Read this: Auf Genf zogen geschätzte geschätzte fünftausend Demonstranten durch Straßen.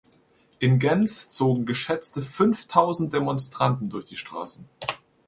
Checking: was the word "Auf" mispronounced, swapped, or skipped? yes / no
yes